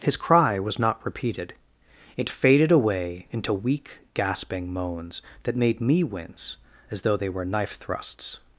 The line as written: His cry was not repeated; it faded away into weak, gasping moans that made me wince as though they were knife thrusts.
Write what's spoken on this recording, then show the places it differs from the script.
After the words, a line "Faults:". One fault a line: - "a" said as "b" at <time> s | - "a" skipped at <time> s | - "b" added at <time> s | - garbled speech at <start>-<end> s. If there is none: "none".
His cry was not repeated; it faded away into weak, gasping moans that made me wince as though they were knife thrusts.
Faults:
none